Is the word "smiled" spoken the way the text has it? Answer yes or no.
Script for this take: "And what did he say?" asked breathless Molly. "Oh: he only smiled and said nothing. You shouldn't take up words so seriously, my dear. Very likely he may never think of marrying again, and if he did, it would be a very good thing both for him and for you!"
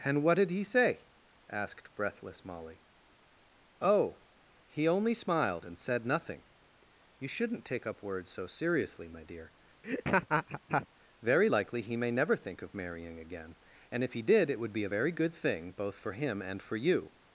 yes